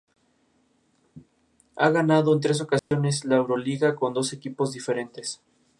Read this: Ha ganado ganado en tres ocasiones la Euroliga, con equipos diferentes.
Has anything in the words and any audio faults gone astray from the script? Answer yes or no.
yes